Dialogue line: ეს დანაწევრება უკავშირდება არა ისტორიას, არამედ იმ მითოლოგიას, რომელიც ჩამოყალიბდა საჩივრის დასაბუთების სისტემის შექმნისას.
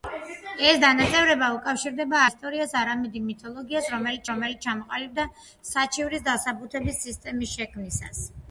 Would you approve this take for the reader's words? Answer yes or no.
no